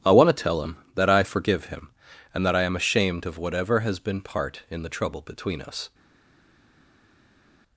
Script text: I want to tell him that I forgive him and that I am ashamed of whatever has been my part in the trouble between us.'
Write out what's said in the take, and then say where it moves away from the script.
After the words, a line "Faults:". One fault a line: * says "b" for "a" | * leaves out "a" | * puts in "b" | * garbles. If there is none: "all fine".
I want to tell him that I forgive him and that I am ashamed of whatever has been part in the trouble between us.'
Faults:
* leaves out "my"